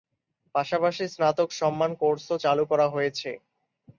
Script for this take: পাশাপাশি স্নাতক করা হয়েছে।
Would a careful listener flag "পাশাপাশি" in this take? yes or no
no